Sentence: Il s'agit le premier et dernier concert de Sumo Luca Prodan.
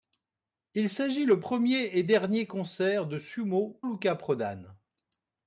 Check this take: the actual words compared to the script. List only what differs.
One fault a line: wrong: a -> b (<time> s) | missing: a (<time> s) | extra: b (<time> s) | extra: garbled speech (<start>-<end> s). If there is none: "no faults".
no faults